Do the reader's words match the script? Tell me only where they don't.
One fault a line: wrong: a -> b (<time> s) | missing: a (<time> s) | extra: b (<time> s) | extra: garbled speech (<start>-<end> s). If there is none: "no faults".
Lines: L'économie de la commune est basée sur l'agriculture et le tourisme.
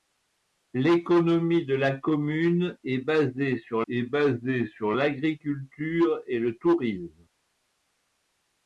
extra: est basée sur (3.9 s)